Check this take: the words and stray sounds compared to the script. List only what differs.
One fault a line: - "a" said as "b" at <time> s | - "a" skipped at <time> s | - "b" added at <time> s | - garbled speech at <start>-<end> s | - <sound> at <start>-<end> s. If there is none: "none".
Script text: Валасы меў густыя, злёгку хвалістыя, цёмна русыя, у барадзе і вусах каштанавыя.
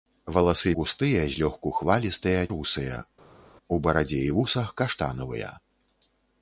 - "меў" skipped at 0.7 s
- "цёмна" skipped at 2.4 s